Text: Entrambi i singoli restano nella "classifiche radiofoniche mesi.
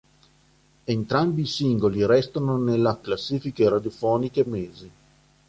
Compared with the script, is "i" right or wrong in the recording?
right